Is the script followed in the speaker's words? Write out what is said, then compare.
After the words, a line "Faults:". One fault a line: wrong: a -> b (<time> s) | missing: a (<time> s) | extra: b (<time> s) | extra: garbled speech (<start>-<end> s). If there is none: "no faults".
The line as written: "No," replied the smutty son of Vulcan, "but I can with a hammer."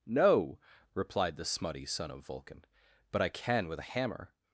"No," replied the smutty son of Vulcan, "but I can with a hammer."
Faults:
no faults